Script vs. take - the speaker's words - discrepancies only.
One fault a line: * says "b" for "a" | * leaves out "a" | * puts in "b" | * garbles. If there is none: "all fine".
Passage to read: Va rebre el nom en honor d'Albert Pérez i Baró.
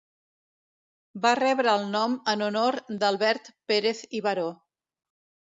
all fine